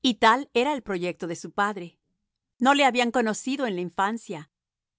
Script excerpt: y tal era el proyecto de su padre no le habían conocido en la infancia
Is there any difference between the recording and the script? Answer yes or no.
no